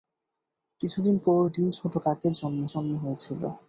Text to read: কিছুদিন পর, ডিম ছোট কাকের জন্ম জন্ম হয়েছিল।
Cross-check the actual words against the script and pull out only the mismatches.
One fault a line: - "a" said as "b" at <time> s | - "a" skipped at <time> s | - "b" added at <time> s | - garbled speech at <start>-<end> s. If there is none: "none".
none